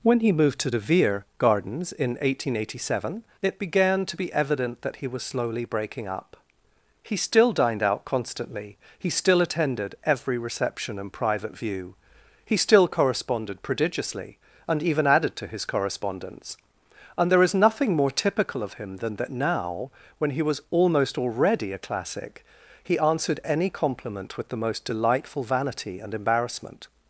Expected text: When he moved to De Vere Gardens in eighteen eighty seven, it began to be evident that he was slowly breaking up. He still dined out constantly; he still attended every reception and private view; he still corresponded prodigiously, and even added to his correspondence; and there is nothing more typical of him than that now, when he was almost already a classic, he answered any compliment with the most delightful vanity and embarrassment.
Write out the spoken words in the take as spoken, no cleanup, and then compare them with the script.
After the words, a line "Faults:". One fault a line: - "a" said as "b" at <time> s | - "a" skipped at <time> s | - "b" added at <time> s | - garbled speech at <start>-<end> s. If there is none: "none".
When he moved to De Vere Gardens in eighteen eighty seven, it began to be evident that he was slowly breaking up. He still dined out constantly; he still attended every reception and private view; he still corresponded prodigiously, and even added to his correspondence; and there is nothing more typical of him than that now, when he was almost already a classic, he answered any compliment with the most delightful vanity and embarrassment.
Faults:
none